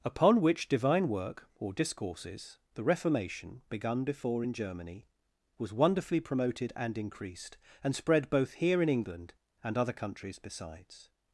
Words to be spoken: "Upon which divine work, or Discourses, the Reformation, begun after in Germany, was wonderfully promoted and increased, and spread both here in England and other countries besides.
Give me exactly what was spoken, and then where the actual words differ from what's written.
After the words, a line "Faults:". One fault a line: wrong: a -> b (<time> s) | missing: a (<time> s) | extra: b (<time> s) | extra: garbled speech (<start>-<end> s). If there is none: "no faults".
"Upon which divine work, or Discourses, the Reformation, begun before in Germany, was wonderfully promoted and increased, and spread both here in England and other countries besides.
Faults:
wrong: after -> before (4.0 s)